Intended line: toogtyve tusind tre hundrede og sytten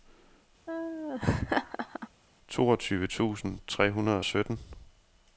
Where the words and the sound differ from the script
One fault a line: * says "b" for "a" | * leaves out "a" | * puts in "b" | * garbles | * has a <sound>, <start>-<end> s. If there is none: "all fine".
* has a laugh, 0.7-2.1 s